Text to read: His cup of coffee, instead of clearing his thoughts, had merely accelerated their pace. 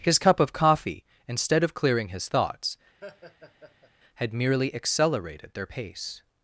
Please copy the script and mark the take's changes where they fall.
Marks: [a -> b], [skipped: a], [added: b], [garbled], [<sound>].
His cup of coffee, instead of clearing his thoughts, [laugh] had merely accelerated their pace.